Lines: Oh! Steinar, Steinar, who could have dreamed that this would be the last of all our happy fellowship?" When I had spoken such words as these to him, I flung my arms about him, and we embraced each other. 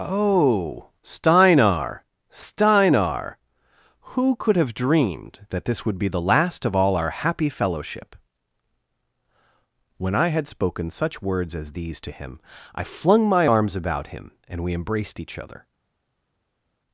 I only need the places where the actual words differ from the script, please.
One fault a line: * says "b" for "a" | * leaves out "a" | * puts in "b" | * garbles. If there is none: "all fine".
all fine